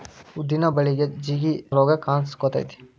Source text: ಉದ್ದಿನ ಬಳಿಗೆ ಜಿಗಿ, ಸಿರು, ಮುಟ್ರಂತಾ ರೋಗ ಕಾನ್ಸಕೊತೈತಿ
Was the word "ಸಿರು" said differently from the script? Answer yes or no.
yes